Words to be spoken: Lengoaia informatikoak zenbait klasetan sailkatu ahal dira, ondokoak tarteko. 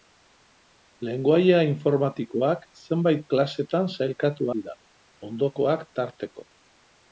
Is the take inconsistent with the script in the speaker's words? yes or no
yes